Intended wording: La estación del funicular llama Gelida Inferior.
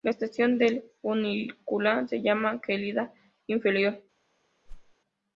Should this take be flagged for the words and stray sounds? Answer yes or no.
yes